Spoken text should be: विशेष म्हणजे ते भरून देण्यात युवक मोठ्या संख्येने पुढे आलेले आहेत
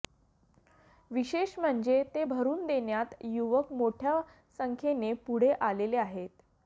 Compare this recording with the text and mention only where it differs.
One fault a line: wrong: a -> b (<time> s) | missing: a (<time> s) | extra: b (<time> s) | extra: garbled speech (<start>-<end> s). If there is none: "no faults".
no faults